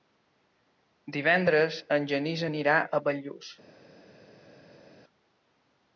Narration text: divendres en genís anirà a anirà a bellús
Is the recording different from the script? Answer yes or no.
yes